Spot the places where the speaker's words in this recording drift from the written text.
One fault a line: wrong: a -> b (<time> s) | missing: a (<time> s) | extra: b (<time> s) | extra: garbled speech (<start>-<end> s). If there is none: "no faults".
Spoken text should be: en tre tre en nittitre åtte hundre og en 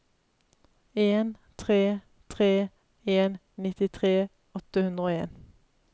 no faults